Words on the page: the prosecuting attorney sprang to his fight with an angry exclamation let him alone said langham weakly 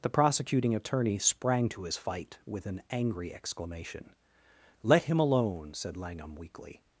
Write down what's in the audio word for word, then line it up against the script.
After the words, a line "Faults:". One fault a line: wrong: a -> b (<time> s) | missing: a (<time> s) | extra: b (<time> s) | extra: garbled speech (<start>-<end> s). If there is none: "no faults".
the prosecuting attorney sprang to his fight with an angry exclamation let him alone said langham weakly
Faults:
no faults